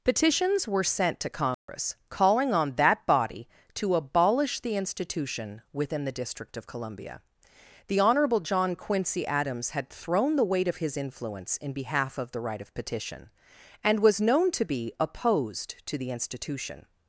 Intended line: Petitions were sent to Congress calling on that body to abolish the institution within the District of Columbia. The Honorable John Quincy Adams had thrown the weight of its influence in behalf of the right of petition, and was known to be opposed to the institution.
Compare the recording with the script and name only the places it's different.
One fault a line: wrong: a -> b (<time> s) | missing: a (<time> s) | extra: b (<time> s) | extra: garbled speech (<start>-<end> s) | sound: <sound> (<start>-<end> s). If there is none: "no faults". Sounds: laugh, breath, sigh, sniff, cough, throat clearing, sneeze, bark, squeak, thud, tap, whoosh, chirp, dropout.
sound: dropout (1.5-1.7 s)
wrong: its -> his (10.8 s)